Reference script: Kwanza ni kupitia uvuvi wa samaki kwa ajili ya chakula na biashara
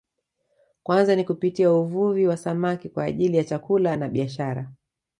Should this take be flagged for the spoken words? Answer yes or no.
no